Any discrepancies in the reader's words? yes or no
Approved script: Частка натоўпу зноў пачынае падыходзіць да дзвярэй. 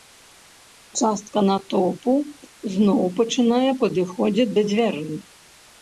no